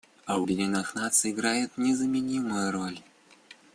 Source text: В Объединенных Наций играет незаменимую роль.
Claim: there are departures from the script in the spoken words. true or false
false